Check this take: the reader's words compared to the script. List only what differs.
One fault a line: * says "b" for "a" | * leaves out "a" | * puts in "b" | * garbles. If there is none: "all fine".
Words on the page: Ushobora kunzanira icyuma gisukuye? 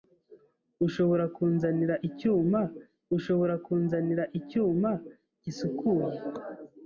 * puts in "ushobora kunzanira icyuma"